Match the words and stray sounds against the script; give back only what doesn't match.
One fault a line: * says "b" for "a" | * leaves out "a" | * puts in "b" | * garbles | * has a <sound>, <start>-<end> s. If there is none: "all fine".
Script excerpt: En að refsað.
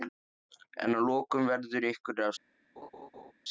* puts in "lokum verður ykkur"
* has a laugh, 2.8-3.3 s